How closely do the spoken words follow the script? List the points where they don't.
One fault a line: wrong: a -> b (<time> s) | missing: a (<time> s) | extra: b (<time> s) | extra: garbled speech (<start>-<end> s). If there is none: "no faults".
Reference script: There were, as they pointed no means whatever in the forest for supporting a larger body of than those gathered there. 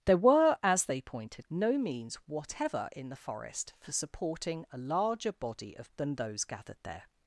no faults